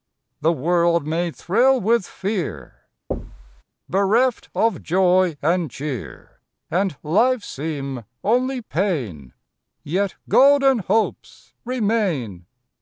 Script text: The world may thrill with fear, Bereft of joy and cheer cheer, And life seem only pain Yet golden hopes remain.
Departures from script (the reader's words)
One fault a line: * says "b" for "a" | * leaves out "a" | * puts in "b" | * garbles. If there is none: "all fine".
* leaves out "cheer"